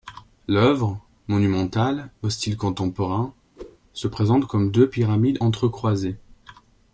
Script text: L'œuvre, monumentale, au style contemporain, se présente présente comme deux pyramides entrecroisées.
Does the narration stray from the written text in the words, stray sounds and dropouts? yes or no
yes